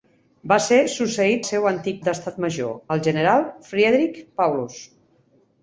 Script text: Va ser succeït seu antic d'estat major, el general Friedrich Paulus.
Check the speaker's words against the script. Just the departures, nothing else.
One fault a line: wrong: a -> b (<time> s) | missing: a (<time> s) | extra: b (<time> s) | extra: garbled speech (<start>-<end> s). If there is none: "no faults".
no faults